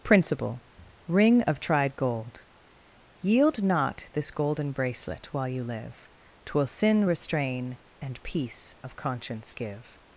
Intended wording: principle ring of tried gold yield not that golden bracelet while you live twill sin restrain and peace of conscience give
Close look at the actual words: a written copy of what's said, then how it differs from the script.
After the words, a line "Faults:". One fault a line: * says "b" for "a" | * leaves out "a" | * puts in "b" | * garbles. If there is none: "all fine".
principle ring of tried gold yield not this golden bracelet while you live twill sin restrain and peace of conscience give
Faults:
* says "this" for "that"